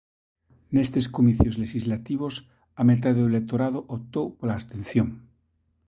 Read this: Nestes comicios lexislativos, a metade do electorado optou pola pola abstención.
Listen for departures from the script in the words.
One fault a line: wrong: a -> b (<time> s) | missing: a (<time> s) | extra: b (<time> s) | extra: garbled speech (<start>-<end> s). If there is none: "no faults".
missing: pola (4.6 s)